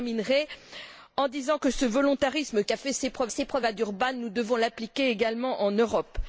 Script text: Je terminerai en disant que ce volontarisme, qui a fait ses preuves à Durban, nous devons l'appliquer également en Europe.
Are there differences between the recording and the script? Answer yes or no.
yes